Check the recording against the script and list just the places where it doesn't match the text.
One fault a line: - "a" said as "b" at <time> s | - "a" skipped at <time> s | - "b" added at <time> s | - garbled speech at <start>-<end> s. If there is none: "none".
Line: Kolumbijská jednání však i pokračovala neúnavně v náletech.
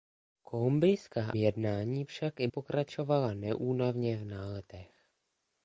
none